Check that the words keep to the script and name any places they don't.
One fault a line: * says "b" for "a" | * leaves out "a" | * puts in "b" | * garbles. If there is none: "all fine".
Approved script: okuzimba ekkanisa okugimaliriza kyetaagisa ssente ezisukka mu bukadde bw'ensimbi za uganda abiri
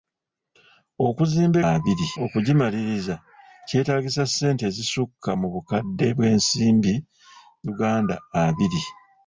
* says "abiri" for "ekkanisa"
* leaves out "za"